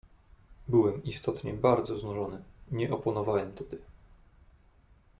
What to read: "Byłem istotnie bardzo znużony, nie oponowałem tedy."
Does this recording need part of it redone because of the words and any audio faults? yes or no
no